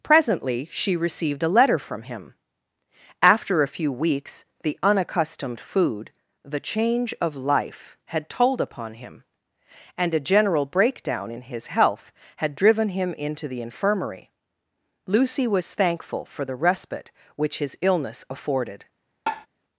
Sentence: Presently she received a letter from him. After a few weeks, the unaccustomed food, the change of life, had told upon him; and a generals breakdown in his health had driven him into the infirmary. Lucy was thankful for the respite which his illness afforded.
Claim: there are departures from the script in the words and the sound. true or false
true